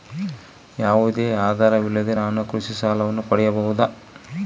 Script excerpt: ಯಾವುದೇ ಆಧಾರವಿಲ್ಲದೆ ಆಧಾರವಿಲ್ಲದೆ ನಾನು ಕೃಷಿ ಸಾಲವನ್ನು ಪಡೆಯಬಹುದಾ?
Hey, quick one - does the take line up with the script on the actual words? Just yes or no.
no